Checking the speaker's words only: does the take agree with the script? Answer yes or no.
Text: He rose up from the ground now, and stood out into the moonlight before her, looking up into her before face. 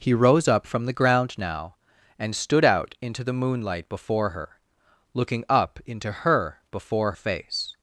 yes